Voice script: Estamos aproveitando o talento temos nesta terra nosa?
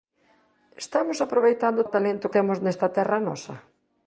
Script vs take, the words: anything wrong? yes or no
no